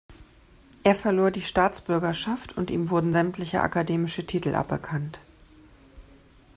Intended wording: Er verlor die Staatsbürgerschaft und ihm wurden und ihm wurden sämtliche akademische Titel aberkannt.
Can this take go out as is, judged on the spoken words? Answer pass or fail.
fail